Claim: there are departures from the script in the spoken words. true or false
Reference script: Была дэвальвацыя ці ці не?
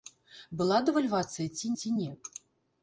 false